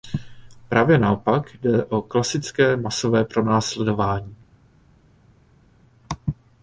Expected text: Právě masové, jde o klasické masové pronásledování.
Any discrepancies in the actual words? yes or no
yes